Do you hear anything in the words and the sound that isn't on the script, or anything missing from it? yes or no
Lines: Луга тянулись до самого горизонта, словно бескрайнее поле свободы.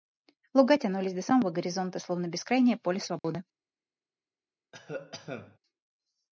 yes